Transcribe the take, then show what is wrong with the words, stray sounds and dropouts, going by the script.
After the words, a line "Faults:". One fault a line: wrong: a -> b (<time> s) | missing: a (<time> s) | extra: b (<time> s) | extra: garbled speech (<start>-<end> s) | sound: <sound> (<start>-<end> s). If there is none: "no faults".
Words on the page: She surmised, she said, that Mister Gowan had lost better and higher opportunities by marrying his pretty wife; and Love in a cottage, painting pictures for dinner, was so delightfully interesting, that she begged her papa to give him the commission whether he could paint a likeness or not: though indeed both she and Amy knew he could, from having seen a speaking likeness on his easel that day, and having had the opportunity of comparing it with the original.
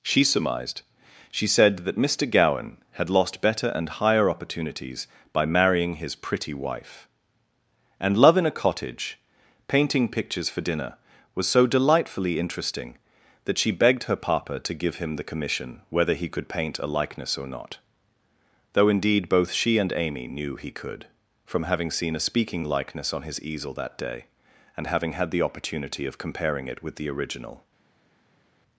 She surmised, she said, that Mister Gowan had lost better and higher opportunities by marrying his pretty wife; and Love in a cottage, painting pictures for dinner, was so delightfully interesting, that she begged her papa to give him the commission whether he could paint a likeness or not: though indeed both she and Amy knew he could, from having seen a speaking likeness on his easel that day, and having had the opportunity of comparing it with the original.
Faults:
no faults